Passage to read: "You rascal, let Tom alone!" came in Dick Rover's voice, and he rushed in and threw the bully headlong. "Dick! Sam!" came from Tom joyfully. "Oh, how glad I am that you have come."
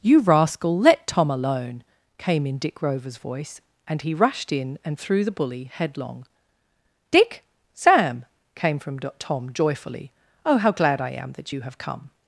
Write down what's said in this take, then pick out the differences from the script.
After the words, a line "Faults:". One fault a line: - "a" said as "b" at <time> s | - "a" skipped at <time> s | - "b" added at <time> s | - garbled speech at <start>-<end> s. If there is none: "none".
"You rascal, let Tom alone!" came in Dick Rover's voice, and he rushed in and threw the bully headlong. "Dick! Sam!" came from Tom joyfully. "Oh, how glad I am that you have come."
Faults:
none